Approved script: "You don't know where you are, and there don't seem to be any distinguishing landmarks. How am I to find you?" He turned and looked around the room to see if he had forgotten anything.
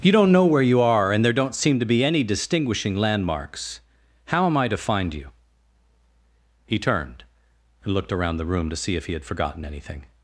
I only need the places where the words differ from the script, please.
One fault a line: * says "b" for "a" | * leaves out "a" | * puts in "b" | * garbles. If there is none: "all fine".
all fine